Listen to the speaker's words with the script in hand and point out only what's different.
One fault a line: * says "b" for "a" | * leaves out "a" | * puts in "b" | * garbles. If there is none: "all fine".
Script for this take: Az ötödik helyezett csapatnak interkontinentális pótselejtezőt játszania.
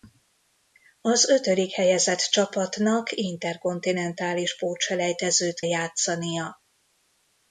all fine